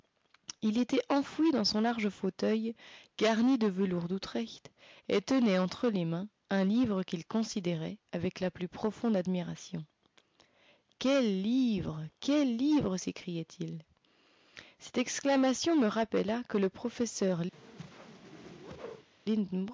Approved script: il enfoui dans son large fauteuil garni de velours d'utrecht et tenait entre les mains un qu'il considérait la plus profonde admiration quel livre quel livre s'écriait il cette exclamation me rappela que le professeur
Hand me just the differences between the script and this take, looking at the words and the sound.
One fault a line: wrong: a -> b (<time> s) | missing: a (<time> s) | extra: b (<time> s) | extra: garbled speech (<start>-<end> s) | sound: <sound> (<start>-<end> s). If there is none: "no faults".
extra: était (0.8 s)
extra: livre (6.6 s)
extra: avec (8.1 s)
sound: whoosh (17.5-19.1 s)